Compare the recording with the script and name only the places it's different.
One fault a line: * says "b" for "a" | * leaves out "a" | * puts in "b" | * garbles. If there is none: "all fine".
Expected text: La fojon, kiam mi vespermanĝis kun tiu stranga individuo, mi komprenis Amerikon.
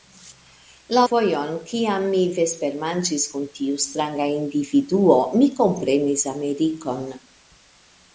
all fine